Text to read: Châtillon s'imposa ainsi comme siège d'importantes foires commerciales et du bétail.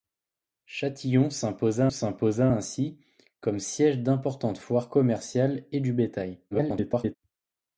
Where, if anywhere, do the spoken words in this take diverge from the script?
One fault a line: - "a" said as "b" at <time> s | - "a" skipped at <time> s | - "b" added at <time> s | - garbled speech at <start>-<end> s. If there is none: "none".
- "s'imposa" added at 1.9 s
- garbled speech at 6.5-7.2 s